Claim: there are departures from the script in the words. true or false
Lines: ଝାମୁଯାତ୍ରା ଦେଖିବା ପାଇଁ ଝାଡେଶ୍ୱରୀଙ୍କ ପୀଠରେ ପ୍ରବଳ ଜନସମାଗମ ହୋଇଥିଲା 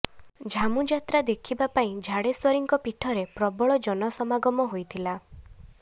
false